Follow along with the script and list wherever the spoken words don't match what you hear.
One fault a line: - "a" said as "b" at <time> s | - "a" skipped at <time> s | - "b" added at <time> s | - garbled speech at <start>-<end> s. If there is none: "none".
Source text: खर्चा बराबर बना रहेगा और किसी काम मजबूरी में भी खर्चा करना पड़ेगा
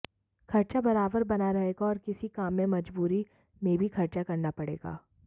- "में" added at 2.5 s